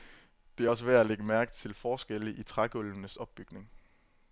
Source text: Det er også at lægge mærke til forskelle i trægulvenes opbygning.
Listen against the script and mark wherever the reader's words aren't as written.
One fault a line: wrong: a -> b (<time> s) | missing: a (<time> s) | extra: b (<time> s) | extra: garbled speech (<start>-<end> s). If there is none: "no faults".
extra: værd (0.8 s)